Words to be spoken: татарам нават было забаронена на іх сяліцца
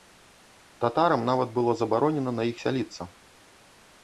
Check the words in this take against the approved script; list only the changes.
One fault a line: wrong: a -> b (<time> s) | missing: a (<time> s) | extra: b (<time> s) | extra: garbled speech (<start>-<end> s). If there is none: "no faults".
no faults